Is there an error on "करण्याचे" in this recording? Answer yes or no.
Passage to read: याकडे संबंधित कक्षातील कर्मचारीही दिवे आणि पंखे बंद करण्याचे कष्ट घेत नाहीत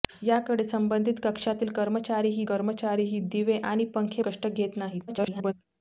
yes